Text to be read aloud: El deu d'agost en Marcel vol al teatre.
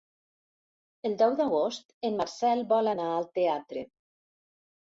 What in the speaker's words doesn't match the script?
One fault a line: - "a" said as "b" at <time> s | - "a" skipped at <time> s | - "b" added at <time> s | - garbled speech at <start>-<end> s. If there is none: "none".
- "anar" added at 2.9 s